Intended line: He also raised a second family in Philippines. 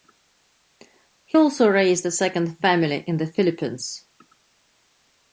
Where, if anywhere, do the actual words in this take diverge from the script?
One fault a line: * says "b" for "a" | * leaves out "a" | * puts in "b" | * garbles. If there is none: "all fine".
* puts in "the"